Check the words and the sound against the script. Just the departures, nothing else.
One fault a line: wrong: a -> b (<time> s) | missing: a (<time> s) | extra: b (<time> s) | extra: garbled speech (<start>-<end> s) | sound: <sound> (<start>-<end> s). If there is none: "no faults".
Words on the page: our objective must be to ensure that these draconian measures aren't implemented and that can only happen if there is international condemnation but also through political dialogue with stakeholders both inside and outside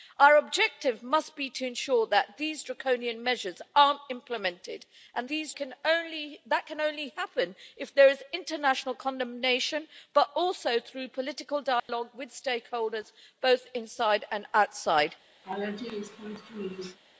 wrong: that -> these (5.3 s)
sound: dropout (11.8-11.9 s)
sound: laugh (15.4-17.0 s)